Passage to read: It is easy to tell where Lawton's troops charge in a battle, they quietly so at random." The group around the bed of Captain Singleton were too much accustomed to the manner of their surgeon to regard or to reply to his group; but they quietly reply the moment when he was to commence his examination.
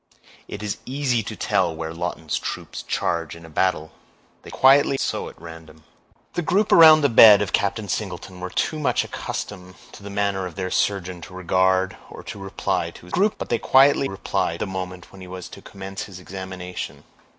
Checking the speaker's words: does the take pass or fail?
pass